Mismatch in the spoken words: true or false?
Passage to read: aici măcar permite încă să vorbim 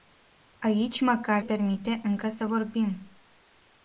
false